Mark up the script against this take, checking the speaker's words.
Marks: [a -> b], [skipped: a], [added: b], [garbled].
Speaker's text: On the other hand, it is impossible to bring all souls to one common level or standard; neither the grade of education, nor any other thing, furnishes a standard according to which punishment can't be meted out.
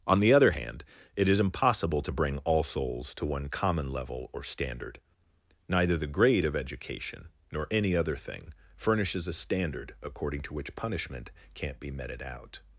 On the other hand, it is impossible to bring all souls to one common level or standard; neither the grade of education, nor any other thing, furnishes a standard according to which punishment can't be meted out.